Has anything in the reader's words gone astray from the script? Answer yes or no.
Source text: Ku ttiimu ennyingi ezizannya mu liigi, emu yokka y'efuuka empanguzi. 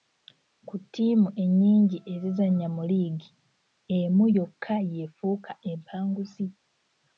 no